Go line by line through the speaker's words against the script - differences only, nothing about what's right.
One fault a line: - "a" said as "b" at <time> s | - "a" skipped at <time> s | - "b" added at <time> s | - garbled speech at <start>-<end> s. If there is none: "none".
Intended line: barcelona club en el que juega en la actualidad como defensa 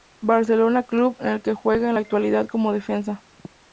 none